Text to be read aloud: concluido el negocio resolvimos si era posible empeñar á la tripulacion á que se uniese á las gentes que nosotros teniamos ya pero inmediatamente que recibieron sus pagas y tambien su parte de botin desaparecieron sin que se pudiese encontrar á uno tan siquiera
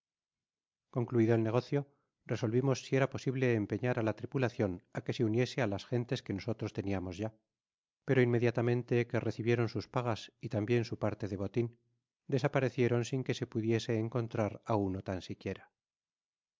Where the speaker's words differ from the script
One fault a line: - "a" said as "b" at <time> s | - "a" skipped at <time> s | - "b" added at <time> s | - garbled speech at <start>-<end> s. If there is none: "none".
none